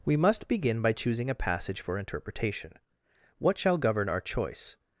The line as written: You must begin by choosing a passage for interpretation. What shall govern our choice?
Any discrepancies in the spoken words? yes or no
yes